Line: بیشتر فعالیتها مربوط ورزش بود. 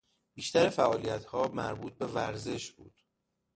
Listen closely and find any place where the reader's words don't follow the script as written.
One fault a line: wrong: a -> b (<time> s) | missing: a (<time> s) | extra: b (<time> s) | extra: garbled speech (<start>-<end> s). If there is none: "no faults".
extra: به (1.9 s)